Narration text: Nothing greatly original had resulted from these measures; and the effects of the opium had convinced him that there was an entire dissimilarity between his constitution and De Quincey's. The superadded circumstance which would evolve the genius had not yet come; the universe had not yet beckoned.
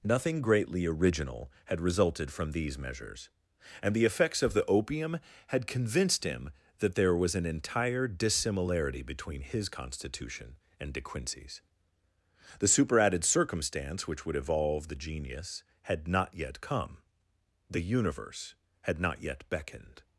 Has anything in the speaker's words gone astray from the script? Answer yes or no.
no